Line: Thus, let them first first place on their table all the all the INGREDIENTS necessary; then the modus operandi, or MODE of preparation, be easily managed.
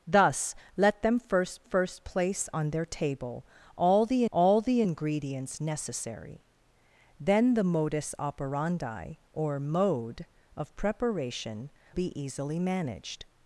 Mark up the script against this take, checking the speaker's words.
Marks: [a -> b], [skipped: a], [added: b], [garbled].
Thus, let them first first place on their table all the all the INGREDIENTS necessary; then the modus operandi, or MODE of preparation, be easily managed.